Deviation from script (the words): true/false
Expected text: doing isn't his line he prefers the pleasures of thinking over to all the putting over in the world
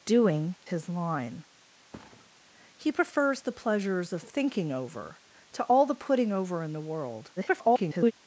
true